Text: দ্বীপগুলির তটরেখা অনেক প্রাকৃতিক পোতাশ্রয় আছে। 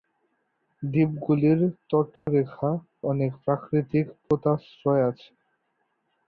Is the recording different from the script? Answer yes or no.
no